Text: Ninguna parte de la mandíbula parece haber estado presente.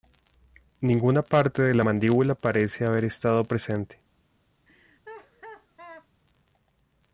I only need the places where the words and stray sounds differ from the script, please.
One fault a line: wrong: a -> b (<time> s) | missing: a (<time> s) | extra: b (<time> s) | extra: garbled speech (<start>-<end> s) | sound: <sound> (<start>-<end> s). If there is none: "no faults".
sound: laugh (4.7-6.1 s)